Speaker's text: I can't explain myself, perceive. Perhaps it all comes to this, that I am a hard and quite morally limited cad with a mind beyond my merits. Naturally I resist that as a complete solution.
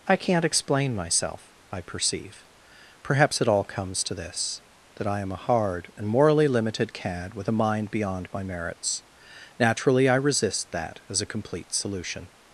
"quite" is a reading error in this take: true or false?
true